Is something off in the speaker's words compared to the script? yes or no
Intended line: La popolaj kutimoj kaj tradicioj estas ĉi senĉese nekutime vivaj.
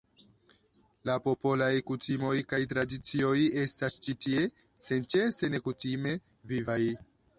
yes